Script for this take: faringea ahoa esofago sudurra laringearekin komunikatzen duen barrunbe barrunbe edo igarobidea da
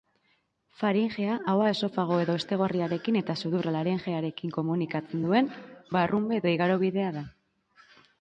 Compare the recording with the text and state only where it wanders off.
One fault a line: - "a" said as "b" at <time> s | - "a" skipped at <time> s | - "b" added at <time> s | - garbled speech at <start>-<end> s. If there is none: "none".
- "edo hestegorriarekin eta" added at 2.2 s
- "barrunbe" skipped at 6.4 s